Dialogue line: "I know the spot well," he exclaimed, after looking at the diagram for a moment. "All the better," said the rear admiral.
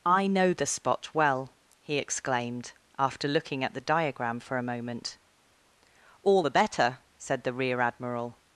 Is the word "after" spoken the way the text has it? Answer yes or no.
yes